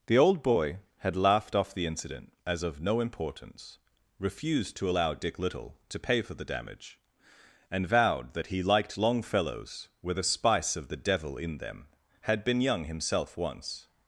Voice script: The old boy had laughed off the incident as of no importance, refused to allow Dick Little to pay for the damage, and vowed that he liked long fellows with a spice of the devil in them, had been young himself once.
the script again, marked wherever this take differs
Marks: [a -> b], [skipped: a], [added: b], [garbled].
The old boy had laughed off the incident as of no importance, refused to allow Dick Little to pay for the damage, and vowed that he liked long fellows with a spice of the devil in them, had been young himself once.